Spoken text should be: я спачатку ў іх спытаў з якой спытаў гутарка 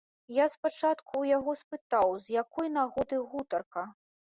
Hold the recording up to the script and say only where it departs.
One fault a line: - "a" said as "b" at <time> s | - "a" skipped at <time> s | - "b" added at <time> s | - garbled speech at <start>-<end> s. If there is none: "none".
- "іх" said as "яго" at 1.4 s
- "спытаў" said as "нагоды" at 2.8 s